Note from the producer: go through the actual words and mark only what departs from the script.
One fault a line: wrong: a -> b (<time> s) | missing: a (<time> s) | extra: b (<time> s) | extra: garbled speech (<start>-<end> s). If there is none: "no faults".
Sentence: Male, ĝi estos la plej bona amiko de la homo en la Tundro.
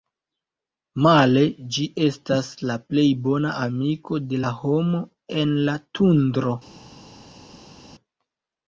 wrong: estos -> estas (2.1 s)